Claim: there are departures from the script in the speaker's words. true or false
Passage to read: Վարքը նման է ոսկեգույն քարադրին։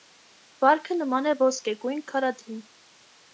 false